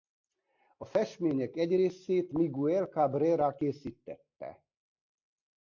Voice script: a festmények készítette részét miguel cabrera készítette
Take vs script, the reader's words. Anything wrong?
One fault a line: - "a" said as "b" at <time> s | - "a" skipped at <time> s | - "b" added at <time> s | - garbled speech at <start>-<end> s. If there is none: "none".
- "készítette" said as "egy" at 1.6 s